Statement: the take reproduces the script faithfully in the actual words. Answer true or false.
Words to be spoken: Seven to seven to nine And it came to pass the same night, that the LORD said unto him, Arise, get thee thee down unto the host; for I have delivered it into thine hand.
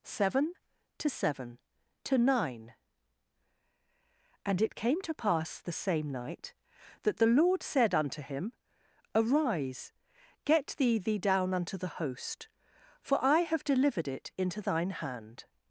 true